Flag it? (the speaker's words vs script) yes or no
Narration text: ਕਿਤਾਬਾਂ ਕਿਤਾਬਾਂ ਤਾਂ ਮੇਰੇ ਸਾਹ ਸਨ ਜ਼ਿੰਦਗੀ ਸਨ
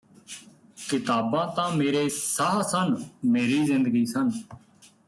yes